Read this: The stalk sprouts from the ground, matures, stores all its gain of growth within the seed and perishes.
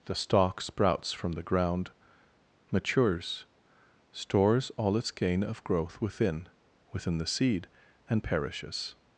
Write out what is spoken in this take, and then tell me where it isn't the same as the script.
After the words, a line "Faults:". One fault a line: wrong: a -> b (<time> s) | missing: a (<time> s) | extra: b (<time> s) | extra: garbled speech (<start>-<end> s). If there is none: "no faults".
The stalk sprouts from the ground, matures, stores all its gain of growth within within the seed and perishes.
Faults:
extra: within (6.9 s)